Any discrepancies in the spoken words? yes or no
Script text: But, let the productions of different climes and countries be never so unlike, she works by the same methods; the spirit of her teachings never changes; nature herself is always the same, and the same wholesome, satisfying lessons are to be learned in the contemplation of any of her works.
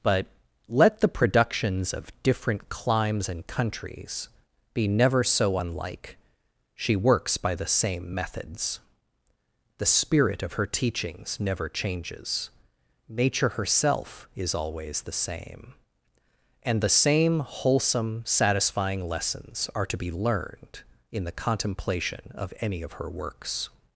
no